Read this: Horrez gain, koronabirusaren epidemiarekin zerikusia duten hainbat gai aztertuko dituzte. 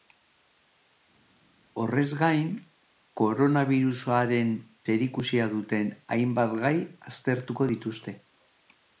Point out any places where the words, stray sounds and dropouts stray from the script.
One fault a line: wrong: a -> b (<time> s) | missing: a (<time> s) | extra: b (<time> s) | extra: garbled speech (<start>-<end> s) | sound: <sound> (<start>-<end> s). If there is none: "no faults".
missing: epidemiarekin (4.5 s)